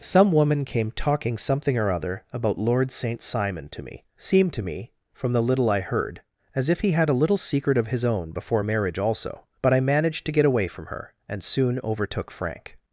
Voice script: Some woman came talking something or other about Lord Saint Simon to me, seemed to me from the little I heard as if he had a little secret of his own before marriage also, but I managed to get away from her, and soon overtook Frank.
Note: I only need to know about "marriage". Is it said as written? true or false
true